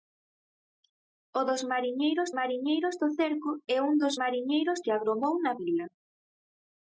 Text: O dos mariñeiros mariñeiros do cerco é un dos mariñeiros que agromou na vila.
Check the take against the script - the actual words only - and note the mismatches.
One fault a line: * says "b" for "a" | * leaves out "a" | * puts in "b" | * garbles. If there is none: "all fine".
all fine